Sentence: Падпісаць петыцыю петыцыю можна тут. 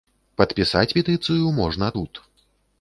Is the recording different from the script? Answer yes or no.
yes